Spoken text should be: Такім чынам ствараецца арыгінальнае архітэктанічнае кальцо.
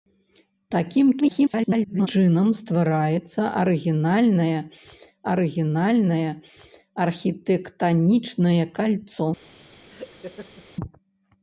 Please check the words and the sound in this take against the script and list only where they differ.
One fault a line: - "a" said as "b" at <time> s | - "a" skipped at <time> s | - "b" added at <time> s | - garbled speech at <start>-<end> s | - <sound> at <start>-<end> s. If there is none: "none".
- garbled speech at 1.2-2.1 s
- "арыгінальнае" added at 5.3 s
- laugh at 9.9-10.7 s